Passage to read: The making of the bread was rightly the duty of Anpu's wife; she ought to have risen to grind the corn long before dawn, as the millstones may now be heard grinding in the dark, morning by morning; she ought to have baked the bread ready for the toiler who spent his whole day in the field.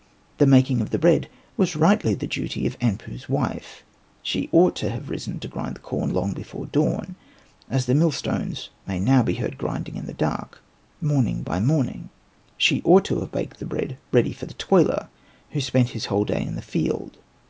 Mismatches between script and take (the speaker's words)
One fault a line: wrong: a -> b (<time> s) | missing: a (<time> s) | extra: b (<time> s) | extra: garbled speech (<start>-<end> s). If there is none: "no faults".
no faults